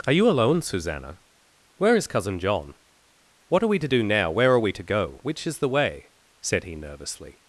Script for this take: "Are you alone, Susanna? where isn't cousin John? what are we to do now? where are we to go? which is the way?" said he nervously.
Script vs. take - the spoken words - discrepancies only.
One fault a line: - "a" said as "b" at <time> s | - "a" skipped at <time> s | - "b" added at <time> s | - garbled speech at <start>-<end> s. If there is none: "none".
- "isn't" said as "is" at 1.9 s